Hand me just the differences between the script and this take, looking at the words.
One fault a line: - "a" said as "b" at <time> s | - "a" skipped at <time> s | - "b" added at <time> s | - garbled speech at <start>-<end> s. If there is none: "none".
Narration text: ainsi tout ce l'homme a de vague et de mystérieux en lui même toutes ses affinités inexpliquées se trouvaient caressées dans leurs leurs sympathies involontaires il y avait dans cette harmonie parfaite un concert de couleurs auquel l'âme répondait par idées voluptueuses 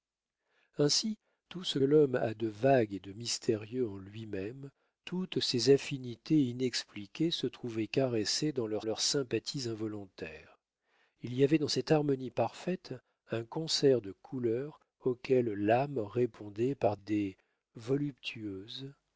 none